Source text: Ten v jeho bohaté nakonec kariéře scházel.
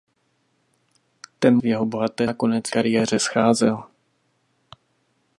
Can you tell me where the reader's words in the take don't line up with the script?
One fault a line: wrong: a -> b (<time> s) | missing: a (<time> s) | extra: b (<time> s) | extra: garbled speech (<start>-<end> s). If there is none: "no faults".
no faults